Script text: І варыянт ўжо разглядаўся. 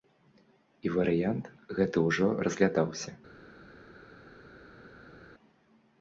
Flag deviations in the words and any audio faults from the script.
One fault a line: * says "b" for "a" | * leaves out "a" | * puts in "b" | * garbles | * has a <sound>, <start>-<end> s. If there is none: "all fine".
* puts in "гэты"